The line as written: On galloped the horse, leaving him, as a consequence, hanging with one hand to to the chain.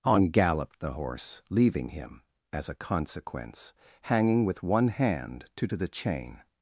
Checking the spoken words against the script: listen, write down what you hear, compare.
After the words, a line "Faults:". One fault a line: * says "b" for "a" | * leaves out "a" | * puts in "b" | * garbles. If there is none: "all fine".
On galloped the horse, leaving him, as a consequence, hanging with one hand to to the chain.
Faults:
all fine